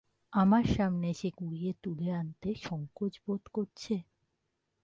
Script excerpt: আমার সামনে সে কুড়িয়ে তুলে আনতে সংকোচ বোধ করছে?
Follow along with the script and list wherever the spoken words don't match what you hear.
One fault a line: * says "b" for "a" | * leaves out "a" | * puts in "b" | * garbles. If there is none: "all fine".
all fine